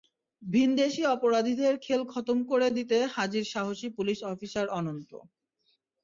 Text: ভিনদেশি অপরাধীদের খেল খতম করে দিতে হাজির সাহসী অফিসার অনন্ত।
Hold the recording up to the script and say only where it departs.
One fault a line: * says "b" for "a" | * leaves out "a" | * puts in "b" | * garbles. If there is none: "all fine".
* puts in "পুলিশ"